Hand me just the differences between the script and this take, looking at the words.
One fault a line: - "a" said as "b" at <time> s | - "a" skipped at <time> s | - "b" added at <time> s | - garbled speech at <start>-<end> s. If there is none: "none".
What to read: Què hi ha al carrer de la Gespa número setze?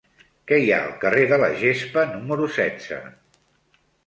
none